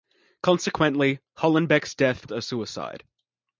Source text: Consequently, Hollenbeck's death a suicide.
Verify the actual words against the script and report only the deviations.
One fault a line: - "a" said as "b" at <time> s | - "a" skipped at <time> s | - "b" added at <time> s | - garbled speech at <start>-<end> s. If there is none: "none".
none